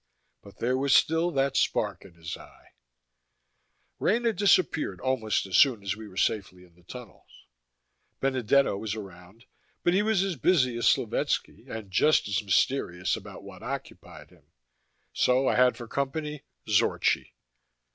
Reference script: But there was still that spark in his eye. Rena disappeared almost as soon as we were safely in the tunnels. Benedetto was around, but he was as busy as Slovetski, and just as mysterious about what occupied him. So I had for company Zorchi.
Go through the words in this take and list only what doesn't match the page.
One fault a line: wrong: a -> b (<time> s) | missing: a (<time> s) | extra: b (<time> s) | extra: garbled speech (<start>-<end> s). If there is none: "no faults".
no faults